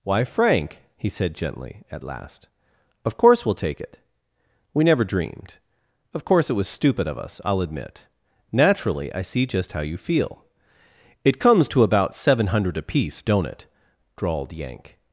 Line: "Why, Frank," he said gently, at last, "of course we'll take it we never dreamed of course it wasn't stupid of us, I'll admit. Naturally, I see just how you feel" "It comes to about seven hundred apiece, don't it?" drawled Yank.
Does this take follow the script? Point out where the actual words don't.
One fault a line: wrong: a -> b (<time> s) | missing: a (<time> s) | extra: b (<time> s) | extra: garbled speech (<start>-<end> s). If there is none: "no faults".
wrong: wasn't -> was (6.5 s)